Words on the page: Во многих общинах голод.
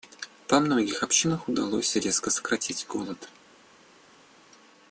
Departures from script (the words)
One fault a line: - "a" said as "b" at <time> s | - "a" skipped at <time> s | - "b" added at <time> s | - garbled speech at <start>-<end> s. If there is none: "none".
- "удалось резко сократить" added at 1.5 s